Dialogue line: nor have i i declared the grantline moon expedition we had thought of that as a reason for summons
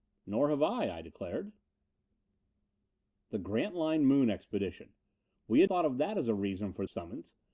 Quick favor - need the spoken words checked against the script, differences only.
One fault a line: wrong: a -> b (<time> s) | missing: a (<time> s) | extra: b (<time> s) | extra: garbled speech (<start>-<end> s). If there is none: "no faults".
no faults